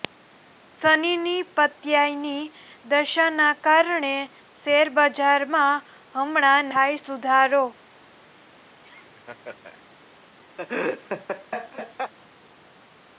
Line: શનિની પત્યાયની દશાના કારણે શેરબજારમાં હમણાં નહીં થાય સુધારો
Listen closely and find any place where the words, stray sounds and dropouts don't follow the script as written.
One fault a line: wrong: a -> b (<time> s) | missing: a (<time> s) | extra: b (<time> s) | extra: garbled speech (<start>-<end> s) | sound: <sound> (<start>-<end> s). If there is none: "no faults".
missing: નહીં (6.7 s)
sound: laugh (8.8-9.8 s)
sound: laugh (10.6-12.1 s)